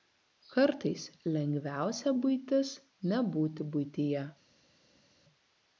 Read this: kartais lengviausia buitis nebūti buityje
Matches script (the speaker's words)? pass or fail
pass